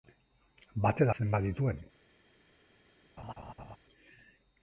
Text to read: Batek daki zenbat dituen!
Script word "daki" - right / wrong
wrong